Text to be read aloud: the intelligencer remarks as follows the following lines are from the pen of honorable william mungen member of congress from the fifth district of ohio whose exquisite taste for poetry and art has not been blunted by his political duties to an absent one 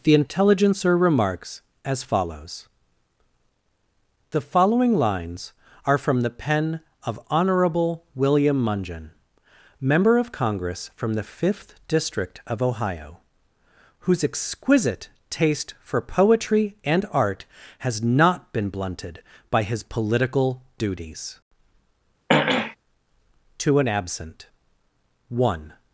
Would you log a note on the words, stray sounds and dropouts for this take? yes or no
yes